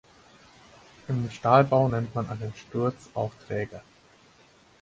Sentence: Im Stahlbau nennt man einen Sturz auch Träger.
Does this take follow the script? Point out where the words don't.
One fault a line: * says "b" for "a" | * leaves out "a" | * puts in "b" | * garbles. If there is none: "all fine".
all fine